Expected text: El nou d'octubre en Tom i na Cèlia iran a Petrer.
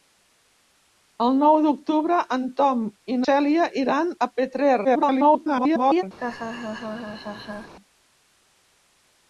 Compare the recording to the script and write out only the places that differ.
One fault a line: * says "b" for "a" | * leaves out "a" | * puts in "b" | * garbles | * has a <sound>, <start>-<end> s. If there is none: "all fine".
* leaves out "na"
* garbles
* has a laugh, 6.2-7.7 s